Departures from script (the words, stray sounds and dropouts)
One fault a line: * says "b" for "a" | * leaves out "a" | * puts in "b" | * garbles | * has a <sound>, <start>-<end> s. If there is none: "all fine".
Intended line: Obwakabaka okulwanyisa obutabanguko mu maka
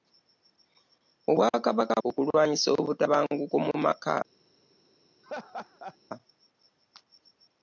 * has a laugh, 5.2-6.0 s